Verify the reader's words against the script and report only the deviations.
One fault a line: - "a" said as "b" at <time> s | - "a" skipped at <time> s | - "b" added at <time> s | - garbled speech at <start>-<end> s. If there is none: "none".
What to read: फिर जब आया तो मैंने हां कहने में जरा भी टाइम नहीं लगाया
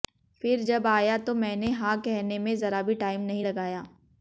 none